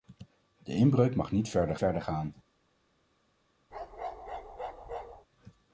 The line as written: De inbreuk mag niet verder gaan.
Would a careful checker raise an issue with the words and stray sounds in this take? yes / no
yes